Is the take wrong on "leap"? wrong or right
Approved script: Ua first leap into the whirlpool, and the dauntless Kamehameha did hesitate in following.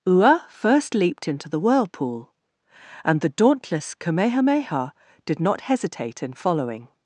wrong